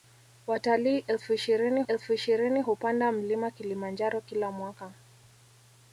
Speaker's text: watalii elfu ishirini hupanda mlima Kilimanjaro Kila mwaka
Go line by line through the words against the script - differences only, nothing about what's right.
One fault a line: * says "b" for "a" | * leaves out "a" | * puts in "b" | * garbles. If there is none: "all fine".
* puts in "elfu ishirini"